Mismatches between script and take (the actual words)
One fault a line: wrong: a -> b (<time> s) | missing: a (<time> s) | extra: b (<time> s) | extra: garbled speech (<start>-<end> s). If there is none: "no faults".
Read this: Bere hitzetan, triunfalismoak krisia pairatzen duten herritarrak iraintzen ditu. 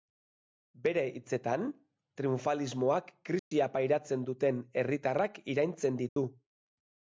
no faults